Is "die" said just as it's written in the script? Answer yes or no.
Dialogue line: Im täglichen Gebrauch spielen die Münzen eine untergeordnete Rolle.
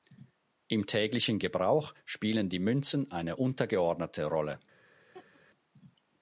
yes